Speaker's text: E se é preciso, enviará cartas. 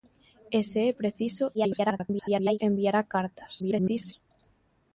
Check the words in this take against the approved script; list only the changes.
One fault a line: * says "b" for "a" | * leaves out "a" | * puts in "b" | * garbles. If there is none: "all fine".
* garbles
* garbles